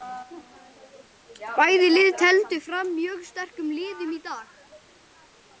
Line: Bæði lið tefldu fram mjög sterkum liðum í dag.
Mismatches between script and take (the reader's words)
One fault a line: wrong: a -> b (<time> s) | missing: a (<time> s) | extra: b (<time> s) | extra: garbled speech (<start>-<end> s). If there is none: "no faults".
no faults